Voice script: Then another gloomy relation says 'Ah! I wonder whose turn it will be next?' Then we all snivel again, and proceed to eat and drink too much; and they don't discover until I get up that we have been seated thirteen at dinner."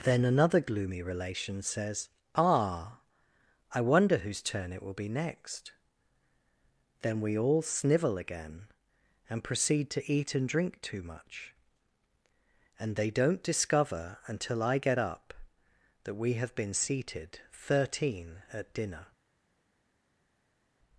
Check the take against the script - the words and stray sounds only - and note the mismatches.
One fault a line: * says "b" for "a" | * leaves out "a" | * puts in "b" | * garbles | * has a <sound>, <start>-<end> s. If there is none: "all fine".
all fine